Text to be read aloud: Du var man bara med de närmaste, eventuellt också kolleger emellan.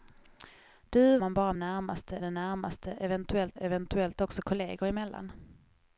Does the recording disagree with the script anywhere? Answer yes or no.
yes